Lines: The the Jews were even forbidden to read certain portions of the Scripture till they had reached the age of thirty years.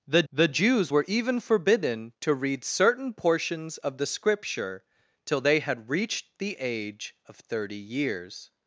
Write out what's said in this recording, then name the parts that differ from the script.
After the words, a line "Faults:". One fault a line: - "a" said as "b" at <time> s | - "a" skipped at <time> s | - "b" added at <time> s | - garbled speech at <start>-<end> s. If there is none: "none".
The the Jews were even forbidden to read certain portions of the Scripture till they had reached the age of thirty years.
Faults:
none